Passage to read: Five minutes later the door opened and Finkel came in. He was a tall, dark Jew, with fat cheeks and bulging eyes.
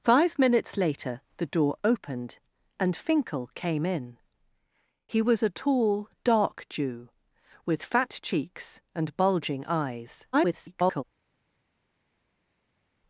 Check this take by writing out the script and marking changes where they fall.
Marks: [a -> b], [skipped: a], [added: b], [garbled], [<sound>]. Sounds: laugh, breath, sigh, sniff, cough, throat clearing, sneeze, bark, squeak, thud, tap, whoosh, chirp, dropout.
Five minutes later the door opened and Finkel came in. He was a tall, dark Jew, with fat cheeks and bulging eyes. [garbled]